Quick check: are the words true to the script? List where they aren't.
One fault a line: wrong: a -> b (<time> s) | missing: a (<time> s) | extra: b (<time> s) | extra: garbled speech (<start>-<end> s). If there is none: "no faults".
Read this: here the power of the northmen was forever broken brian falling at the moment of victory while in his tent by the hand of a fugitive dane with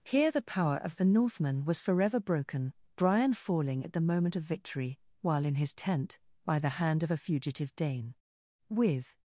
no faults